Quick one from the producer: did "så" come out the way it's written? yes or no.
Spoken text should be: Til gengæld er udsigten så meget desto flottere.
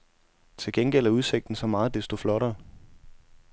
yes